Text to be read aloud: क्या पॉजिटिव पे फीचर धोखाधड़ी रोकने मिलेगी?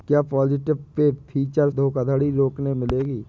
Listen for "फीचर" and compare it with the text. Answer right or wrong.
right